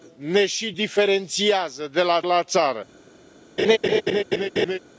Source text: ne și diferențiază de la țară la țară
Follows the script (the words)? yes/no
no